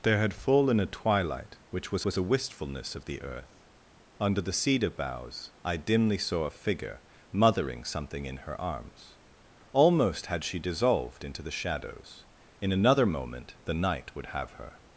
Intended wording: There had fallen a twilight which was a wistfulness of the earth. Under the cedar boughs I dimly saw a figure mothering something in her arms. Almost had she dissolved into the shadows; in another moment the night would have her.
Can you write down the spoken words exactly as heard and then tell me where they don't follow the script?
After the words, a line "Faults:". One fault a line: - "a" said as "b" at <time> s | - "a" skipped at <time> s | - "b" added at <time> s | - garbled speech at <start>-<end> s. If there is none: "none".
There had fallen a twilight which was was a wistfulness of the earth. Under the cedar boughs I dimly saw a figure mothering something in her arms. Almost had she dissolved into the shadows; in another moment the night would have her.
Faults:
- "was" added at 2.0 s